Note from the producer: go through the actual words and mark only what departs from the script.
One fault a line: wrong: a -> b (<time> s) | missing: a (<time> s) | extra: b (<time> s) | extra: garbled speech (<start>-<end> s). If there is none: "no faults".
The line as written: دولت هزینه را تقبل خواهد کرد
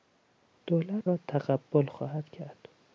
missing: هزینه (1.0 s)